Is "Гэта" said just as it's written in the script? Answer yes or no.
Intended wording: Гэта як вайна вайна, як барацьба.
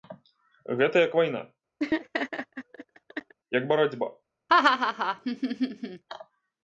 yes